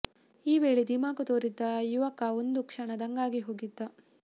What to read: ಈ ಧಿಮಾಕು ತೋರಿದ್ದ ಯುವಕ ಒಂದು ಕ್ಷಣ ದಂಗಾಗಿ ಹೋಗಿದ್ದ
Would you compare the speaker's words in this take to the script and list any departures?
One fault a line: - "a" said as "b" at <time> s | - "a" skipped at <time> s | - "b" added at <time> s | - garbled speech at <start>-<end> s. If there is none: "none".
- "ವೇಳೆ" added at 0.6 s